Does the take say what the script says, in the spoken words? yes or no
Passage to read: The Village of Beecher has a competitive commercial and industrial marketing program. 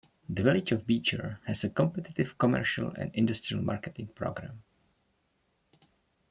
yes